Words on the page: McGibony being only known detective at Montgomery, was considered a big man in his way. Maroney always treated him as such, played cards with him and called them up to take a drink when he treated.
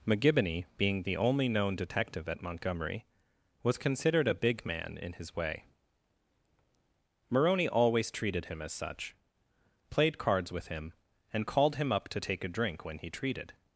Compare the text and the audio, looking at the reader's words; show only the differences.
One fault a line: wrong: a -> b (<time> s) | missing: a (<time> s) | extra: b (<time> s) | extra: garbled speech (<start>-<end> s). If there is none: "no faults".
extra: the (1.0 s)
wrong: them -> him (11.8 s)